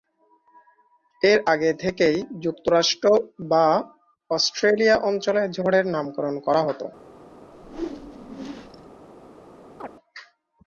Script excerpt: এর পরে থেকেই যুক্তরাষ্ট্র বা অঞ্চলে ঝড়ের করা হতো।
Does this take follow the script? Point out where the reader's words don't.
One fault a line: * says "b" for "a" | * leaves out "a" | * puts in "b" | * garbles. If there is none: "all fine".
* says "আগে" for "পরে"
* puts in "অস্ট্রেলিয়া"
* puts in "নামকরণ"